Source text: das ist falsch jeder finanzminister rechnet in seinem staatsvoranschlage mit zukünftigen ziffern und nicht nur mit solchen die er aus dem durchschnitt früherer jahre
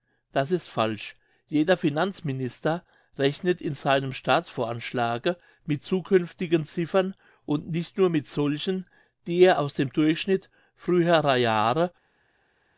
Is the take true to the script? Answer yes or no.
yes